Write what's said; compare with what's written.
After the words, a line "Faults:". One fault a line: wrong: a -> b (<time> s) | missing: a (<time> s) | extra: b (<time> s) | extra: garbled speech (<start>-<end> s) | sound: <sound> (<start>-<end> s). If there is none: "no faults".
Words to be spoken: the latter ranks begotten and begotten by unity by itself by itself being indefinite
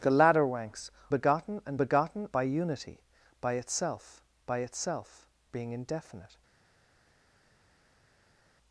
the latter ranks begotten and begotten by unity by itself by itself being indefinite
Faults:
no faults